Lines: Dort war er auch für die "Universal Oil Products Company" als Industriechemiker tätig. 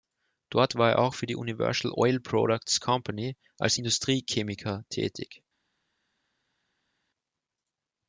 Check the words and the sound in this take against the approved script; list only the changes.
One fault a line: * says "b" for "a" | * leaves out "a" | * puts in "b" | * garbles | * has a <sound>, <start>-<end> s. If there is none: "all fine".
all fine